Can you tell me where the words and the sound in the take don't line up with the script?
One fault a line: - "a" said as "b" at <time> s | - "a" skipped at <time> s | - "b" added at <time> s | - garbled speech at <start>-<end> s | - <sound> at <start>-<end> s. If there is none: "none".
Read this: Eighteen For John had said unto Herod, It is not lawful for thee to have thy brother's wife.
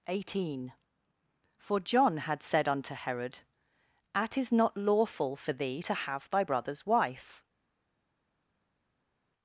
- "It" said as "At" at 4.1 s